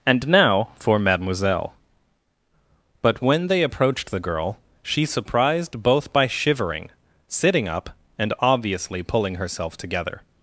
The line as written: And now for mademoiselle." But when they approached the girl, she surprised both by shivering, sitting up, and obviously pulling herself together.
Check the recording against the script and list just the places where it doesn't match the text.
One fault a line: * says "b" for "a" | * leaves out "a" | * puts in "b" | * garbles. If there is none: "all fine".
all fine